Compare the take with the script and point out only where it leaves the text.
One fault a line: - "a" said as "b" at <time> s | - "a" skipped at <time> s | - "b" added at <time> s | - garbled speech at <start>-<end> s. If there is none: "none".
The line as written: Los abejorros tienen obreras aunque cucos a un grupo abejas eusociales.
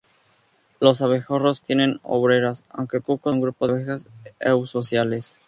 none